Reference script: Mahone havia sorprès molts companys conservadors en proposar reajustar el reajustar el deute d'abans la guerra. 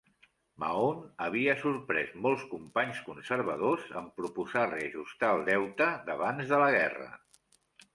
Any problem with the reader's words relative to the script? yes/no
yes